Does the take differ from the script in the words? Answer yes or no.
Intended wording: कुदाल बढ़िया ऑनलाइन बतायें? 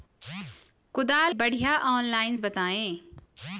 no